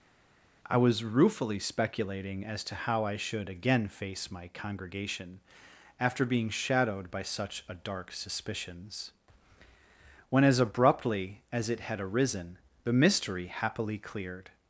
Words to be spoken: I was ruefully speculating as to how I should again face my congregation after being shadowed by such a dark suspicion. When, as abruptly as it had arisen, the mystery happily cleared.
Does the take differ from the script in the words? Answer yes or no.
yes